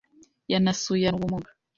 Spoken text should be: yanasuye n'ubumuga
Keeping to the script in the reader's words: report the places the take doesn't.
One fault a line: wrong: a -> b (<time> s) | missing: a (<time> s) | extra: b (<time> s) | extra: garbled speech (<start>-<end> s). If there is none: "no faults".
no faults